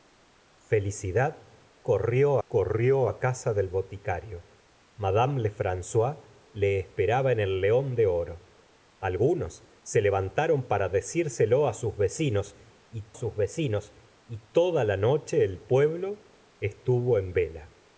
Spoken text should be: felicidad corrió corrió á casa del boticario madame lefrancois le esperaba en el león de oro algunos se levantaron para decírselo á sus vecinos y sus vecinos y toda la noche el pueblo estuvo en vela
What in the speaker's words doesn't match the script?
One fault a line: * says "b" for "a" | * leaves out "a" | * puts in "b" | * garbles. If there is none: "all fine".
all fine